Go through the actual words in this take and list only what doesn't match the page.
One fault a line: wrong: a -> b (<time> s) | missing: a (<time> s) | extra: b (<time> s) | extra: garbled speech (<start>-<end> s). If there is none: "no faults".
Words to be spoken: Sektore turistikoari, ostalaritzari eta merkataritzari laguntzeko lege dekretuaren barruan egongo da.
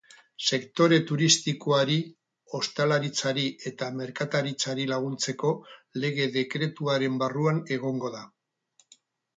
no faults